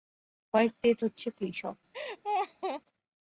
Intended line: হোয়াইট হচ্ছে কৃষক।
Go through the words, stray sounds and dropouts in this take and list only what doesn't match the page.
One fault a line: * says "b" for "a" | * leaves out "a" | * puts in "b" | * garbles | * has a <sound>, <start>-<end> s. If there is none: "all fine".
* puts in "ডেথ"
* has a laugh, 1.9-2.8 s